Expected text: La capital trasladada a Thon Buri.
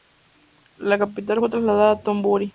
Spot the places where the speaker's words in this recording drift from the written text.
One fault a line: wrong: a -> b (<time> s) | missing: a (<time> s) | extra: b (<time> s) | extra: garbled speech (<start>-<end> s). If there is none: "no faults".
extra: fue (1.4 s)